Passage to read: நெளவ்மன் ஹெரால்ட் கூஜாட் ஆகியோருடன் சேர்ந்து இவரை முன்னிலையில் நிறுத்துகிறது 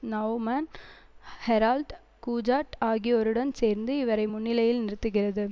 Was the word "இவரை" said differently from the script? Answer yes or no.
no